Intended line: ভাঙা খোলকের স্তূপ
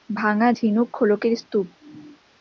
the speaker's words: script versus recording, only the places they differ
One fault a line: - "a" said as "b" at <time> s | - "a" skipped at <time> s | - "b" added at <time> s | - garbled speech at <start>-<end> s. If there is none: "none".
- "ঝিনুক" added at 0.5 s